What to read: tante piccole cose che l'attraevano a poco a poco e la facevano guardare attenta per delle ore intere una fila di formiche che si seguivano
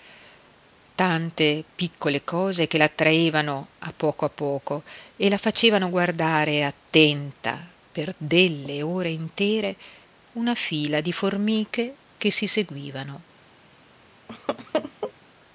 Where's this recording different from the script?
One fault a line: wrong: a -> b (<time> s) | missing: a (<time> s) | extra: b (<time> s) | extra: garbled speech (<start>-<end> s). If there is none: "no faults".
no faults